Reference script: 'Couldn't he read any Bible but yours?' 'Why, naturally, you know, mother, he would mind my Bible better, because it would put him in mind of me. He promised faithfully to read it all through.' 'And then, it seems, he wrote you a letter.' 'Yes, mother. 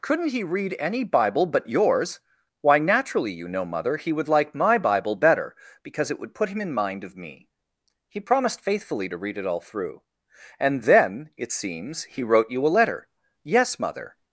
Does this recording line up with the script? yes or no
no